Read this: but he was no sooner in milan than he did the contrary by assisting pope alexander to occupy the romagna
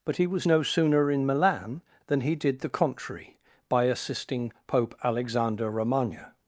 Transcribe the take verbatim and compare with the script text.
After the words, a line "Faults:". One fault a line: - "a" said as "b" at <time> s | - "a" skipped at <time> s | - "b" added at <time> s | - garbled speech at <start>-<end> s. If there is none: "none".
but he was no sooner in milan than he did the contrary by assisting pope alexander romagna
Faults:
- "to occupy the" skipped at 5.7 s